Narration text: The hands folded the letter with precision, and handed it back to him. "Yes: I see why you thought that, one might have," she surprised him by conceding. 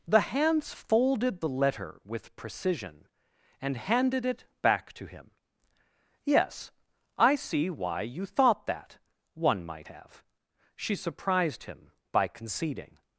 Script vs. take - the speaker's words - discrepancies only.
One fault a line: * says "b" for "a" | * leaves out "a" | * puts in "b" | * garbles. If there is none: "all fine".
all fine